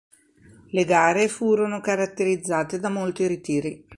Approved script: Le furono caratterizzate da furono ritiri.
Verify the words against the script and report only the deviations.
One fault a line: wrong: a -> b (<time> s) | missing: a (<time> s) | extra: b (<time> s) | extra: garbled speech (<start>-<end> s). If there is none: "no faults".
extra: gare (0.8 s)
wrong: furono -> molti (2.9 s)